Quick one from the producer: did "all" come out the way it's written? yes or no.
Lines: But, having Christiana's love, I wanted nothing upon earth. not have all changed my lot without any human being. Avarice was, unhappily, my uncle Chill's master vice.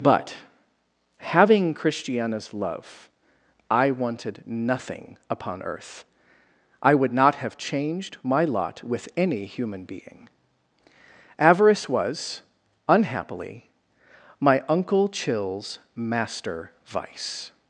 no